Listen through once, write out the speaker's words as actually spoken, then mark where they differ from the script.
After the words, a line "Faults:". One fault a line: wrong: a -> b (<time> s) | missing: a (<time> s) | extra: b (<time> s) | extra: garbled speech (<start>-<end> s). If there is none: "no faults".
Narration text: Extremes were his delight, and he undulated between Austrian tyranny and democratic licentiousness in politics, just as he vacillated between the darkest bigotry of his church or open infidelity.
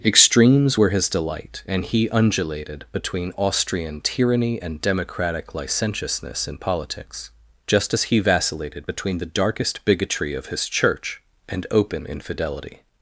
Extremes were his delight, and he undulated between Austrian tyranny and democratic licentiousness in politics, just as he vacillated between the darkest bigotry of his church and open infidelity.
Faults:
wrong: or -> and (11.5 s)